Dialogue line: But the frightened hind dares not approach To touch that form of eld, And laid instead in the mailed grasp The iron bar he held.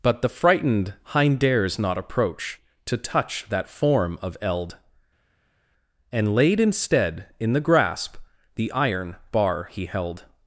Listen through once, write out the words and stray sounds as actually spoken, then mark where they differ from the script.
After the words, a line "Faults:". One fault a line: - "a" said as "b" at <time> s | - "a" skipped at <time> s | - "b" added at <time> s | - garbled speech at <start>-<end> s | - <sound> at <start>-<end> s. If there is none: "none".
But the frightened hind dares not approach To touch that form of eld, And laid instead in the grasp The iron bar he held.
Faults:
- "mailed" skipped at 7.6 s